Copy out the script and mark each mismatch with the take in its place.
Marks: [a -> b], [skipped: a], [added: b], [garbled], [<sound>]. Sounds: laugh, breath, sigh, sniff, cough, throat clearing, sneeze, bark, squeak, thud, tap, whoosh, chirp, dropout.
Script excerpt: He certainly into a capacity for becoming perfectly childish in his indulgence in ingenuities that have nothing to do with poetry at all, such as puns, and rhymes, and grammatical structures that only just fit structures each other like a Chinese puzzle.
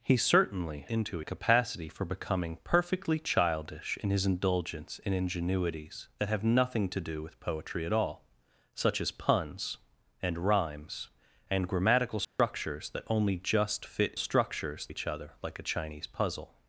He certainly into a capacity for becoming perfectly childish in his indulgence in ingenuities that have nothing to do with poetry at all, such as puns, and rhymes, and grammatical structures [dropout] that only just fit structures each other like a Chinese puzzle.